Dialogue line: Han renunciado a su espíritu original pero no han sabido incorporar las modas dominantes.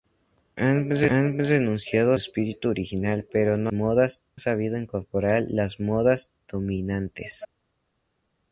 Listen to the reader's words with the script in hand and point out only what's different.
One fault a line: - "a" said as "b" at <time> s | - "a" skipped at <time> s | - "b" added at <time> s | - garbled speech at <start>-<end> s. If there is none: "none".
- "su" skipped at 2.2 s
- "han" said as "modas" at 3.7 s